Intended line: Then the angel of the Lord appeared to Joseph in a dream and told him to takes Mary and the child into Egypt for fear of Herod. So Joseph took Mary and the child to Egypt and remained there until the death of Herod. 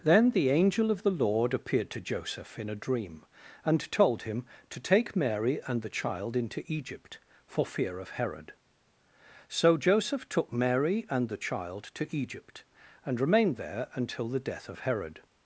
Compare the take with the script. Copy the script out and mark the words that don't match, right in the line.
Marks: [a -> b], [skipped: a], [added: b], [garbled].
Then the angel of the Lord appeared to Joseph in a dream and told him to [takes -> take] Mary and the child into Egypt for fear of Herod. So Joseph took Mary and the child to Egypt and remained there until the death of Herod.